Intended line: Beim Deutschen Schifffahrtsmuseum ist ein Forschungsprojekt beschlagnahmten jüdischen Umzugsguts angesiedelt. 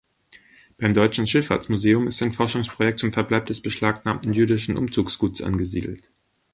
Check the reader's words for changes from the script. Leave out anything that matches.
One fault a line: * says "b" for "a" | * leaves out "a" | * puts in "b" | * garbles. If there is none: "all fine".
* puts in "zum Verbleib des"